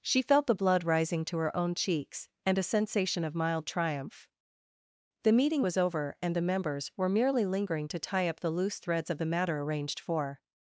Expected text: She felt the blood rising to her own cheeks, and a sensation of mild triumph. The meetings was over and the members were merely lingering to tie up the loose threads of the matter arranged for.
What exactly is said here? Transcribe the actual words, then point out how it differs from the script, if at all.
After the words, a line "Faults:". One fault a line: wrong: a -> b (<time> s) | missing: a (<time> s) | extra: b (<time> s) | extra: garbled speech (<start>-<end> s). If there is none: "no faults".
She felt the blood rising to her own cheeks, and a sensation of mild triumph. The meeting was over and the members were merely lingering to tie up the loose threads of the matter arranged for.
Faults:
wrong: meetings -> meeting (5.3 s)